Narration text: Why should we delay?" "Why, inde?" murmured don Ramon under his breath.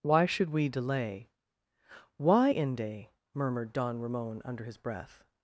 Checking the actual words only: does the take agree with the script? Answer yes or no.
yes